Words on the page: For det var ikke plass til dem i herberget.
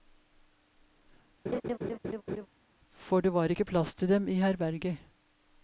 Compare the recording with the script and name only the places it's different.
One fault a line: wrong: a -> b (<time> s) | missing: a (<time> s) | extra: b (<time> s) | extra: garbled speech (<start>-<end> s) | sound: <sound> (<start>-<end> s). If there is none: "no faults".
sound: laugh (1.5-2.5 s)